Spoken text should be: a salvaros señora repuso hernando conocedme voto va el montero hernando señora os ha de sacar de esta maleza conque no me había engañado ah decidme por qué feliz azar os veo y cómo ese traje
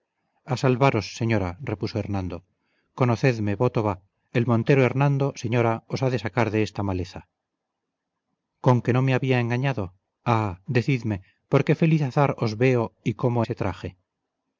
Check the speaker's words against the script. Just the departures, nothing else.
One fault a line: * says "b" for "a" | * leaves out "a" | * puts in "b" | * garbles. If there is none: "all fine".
all fine